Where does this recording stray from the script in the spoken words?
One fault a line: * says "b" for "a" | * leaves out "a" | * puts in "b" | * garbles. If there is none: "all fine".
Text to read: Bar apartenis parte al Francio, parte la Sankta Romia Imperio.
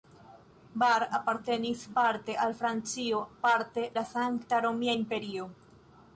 all fine